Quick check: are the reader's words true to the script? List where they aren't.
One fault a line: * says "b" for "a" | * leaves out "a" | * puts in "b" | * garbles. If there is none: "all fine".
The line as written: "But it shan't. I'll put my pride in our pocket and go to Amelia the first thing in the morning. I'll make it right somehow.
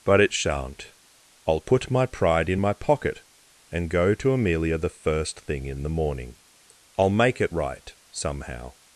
* says "my" for "our"